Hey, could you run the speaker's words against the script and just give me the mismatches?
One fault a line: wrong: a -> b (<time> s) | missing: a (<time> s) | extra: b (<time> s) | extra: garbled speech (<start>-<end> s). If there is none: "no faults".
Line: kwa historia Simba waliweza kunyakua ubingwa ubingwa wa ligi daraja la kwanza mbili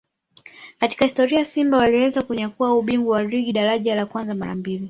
wrong: kwa -> katika (0.8 s)
missing: ubingwa (3.2 s)
extra: mara (4.3 s)